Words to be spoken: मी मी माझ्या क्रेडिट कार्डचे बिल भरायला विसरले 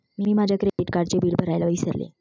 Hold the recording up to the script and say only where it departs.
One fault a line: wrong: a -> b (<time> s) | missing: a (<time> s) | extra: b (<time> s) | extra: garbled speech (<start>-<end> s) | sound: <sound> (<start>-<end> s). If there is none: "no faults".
missing: मी (0.3 s)
sound: dropout (0.7-0.8 s)